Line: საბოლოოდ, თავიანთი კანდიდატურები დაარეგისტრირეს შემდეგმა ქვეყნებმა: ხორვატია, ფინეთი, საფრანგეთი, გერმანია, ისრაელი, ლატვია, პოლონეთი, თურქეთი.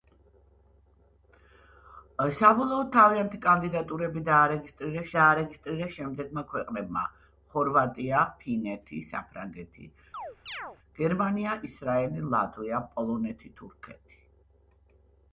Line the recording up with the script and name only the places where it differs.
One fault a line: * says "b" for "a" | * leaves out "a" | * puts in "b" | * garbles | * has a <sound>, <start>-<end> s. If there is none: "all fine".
* puts in "დაარეგისტრირეს"
* has a chirp, 10.1-10.8 s